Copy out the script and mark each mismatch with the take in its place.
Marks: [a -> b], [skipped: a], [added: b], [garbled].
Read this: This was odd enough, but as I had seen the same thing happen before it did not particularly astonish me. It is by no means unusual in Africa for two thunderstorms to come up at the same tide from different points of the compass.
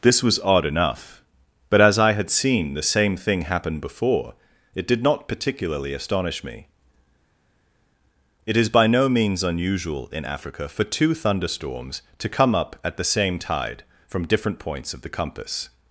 This was odd enough, but as I had seen the same thing happen before it did not particularly astonish me. It is by no means unusual in Africa for two thunderstorms to come up at the same tide from different points of the compass.